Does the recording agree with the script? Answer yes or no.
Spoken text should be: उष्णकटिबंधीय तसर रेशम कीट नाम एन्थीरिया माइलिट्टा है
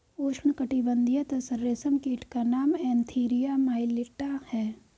no